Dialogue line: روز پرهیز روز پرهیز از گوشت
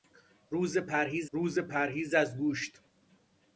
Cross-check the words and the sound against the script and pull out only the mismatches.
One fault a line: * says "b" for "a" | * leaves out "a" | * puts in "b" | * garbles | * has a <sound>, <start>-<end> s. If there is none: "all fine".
all fine